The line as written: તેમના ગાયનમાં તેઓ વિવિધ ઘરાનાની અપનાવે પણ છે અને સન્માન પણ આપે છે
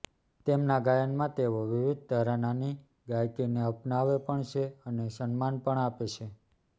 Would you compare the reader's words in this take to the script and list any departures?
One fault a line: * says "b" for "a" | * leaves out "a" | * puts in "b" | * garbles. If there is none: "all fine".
* puts in "ગાયકીને"